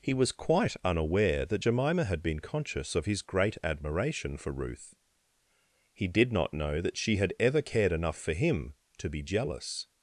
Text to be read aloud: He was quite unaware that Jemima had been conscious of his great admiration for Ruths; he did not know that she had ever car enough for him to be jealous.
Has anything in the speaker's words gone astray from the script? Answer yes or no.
yes